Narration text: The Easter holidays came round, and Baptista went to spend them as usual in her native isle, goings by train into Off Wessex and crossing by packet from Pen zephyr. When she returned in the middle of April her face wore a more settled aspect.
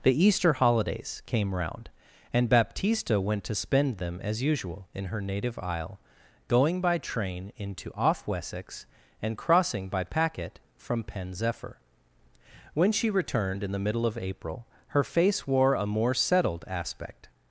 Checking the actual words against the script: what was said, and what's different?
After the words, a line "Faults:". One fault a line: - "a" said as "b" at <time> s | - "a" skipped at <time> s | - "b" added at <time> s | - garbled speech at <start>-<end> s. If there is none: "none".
The Easter holidays came round, and Baptista went to spend them as usual in her native isle, going by train into Off Wessex and crossing by packet from Pen zephyr. When she returned in the middle of April her face wore a more settled aspect.
Faults:
- "goings" said as "going" at 6.5 s